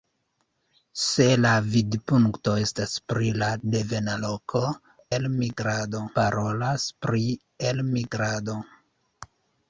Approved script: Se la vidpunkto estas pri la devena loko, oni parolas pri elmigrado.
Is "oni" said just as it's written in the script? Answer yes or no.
no